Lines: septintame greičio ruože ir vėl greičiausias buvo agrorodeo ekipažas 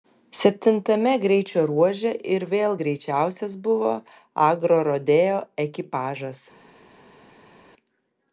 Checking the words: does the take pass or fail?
pass